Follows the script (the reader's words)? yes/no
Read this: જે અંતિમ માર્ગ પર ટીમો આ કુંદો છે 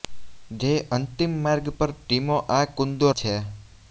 yes